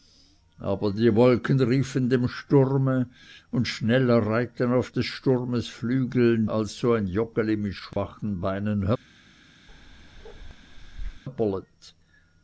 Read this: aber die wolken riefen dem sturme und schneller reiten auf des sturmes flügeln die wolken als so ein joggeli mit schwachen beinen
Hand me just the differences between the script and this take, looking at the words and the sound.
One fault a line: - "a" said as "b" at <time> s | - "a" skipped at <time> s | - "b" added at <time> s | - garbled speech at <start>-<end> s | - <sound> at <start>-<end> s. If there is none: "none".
- "die wolken" skipped at 6.5 s
- dropout at 7.9-8.0 s
- bark at 9.7-11.2 s